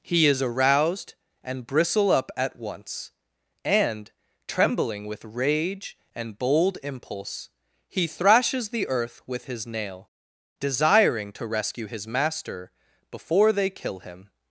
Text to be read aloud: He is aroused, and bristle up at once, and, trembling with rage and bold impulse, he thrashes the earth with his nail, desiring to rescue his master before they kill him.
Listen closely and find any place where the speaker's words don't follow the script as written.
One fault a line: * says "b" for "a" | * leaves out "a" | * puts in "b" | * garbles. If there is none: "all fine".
all fine